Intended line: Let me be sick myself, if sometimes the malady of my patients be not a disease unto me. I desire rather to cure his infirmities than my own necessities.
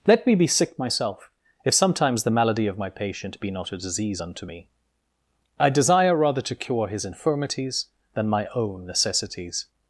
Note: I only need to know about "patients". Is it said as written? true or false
false